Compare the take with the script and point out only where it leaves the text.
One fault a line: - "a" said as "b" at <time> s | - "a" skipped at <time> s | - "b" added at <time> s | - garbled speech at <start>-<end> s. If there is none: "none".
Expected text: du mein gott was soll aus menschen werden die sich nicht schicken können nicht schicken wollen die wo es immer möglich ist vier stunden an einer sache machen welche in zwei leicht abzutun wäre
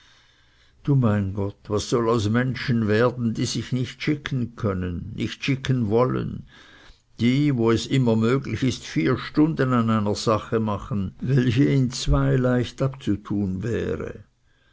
none